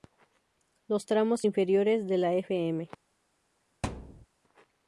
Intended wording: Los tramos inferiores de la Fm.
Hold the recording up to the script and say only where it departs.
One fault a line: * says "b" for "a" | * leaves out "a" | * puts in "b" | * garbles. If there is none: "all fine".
all fine